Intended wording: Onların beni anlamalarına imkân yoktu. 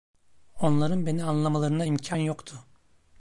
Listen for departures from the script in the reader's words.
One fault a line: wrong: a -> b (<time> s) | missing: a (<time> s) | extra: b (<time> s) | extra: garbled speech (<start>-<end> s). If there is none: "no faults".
no faults